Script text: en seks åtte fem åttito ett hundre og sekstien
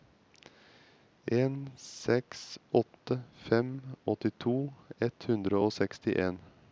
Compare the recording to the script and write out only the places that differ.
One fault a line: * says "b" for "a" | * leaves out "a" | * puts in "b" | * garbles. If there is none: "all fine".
all fine